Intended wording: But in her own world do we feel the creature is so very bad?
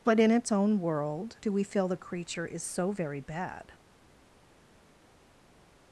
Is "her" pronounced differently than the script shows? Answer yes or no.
yes